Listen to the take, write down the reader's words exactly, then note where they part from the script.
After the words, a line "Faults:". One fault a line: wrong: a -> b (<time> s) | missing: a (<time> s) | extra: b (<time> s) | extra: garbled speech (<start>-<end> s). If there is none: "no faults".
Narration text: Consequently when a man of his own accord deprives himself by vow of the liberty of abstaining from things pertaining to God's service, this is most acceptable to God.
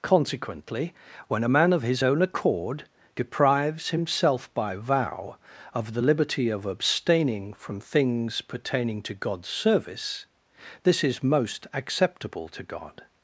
Consequently when a man of his own accord deprives himself by vow of the liberty of abstaining from things pertaining to God's service, this is most acceptable to God.
Faults:
no faults